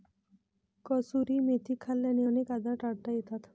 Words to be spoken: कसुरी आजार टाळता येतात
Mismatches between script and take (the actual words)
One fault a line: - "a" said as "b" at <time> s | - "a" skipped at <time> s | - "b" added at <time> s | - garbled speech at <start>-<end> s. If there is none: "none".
- "मेथी खाल्ल्याने अनेक" added at 1.4 s